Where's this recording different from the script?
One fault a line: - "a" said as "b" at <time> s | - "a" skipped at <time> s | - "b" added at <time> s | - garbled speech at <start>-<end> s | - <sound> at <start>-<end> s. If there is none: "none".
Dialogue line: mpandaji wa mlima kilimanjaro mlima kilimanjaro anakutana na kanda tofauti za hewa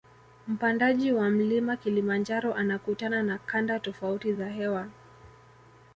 - "mlima kilimanjaro" skipped at 2.5 s